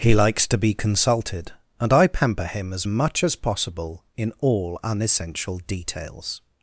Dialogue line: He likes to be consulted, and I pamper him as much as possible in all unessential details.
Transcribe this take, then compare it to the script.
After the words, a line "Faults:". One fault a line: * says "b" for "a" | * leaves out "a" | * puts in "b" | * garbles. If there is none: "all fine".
He likes to be consulted, and I pamper him as much as possible in all unessential details.
Faults:
all fine